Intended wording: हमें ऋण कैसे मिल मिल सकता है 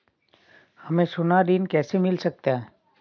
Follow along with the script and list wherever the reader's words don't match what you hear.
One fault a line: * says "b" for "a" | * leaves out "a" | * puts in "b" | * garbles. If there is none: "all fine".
* puts in "सोना"
* leaves out "मिल"